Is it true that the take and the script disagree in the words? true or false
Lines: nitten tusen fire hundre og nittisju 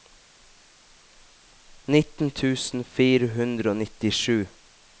false